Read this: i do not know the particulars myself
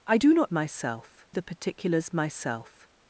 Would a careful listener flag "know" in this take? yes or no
yes